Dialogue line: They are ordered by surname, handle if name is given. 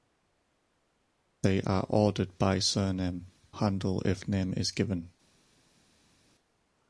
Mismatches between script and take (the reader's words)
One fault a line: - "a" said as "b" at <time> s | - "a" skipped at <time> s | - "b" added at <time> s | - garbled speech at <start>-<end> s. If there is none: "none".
none